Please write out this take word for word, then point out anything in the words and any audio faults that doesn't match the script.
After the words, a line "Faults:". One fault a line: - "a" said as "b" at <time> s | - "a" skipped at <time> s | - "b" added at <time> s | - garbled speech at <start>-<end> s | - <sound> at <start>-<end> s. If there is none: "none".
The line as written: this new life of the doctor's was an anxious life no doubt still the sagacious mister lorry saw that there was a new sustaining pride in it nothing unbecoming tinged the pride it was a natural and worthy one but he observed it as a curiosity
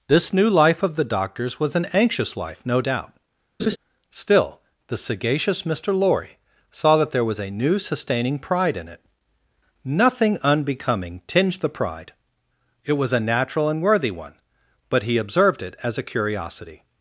this new life of the doctor's was an anxious life no doubt still the sagacious mister lorry saw that there was a new sustaining pride in it nothing unbecoming tinged the pride it was a natural and worthy one but he observed it as a curiosity
Faults:
- laugh at 3.6-3.8 s